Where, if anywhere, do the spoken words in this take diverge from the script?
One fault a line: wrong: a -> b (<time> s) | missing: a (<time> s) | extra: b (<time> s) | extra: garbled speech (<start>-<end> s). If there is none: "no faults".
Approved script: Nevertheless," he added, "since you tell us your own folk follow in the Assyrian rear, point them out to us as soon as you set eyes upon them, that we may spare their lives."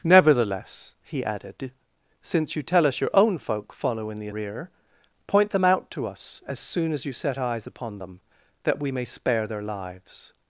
missing: Assyrian (4.3 s)